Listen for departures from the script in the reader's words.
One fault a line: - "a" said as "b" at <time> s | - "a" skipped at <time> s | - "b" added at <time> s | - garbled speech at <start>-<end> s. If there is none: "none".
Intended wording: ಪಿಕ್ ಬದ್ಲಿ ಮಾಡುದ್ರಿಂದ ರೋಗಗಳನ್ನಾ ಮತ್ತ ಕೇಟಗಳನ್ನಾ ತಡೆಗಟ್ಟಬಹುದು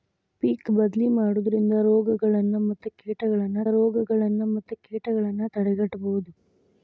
- "ರೋಗಗಳನ್ನಾ ಮತ್ತ ಕೇಟಗಳನ್ನಾ" added at 3.7 s